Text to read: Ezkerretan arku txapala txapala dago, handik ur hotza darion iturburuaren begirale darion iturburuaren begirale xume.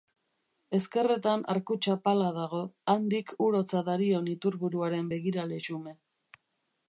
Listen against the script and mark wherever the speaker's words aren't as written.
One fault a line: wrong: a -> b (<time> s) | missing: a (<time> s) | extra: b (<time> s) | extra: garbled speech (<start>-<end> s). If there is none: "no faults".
missing: txapala (2.3 s)
missing: darion iturburuaren begirale (5.6 s)